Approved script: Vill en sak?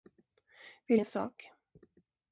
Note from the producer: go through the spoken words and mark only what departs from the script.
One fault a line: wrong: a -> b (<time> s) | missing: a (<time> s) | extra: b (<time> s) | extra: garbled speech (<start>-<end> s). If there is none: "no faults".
no faults